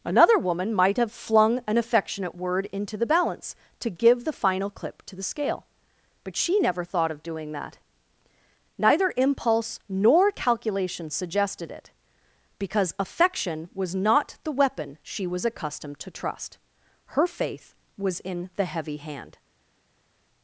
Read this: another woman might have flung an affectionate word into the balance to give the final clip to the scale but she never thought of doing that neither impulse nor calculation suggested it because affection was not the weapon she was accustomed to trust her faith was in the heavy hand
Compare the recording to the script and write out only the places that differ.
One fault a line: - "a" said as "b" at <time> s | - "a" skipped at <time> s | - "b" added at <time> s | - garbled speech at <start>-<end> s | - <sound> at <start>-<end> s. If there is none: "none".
none